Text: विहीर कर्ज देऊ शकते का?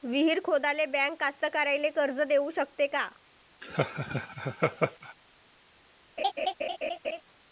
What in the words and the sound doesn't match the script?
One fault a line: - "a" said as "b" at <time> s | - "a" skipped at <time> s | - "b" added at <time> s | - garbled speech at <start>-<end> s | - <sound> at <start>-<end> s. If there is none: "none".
- "खोदाले बँक कास्तकाराइले" added at 0.4 s
- laugh at 3.6-5.1 s
- laugh at 6.2-7.2 s